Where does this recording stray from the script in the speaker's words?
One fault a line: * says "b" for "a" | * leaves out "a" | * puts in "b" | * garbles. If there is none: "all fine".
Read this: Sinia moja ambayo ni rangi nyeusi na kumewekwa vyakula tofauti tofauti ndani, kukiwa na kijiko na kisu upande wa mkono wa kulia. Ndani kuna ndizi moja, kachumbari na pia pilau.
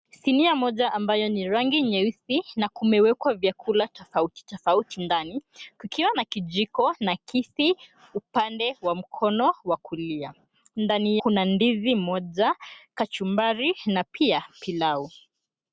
all fine